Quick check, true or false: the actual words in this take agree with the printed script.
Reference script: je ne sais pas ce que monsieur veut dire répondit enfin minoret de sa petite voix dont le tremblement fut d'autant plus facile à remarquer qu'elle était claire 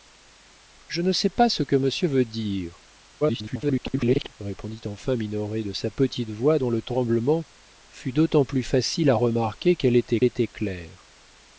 false